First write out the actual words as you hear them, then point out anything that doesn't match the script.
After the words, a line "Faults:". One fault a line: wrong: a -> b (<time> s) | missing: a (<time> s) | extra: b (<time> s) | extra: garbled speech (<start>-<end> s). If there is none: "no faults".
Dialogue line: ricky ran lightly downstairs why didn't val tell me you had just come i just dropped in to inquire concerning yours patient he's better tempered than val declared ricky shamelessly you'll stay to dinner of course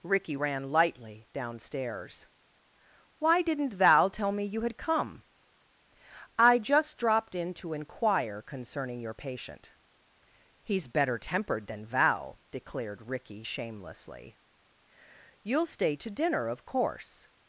ricky ran lightly downstairs why didn't val tell me you had come i just dropped in to inquire concerning your patient he's better tempered than val declared ricky shamelessly you'll stay to dinner of course
Faults:
missing: just (4.8 s)
wrong: yours -> your (9.0 s)